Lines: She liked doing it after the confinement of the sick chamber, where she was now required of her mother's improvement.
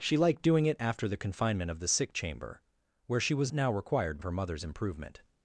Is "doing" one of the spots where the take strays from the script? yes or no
no